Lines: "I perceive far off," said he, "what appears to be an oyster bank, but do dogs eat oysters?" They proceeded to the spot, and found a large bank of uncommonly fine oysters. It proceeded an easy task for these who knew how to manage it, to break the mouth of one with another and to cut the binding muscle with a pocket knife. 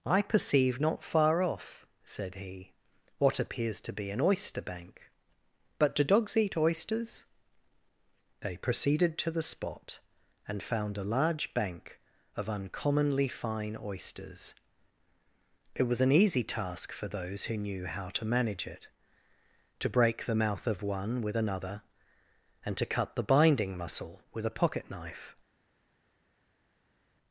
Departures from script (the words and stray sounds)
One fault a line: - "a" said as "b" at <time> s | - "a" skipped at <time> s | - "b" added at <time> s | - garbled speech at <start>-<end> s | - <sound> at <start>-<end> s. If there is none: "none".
- "not" added at 0.8 s
- "proceeded" said as "was" at 15.8 s
- "these" said as "those" at 17.1 s